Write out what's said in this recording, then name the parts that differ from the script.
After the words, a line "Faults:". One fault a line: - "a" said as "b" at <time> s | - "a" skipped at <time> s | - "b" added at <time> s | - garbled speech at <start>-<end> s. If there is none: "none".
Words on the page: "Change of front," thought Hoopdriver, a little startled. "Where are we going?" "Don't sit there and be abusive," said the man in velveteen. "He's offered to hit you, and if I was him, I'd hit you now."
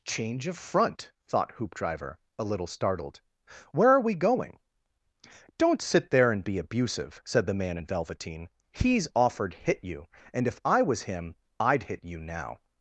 "Change of front," thought Hoopdriver, a little startled. "Where are we going?" "Don't sit there and be abusive," said the man in velveteen. "He's offered hit you, and if I was him, I'd hit you now."
Faults:
- "to" skipped at 9.5 s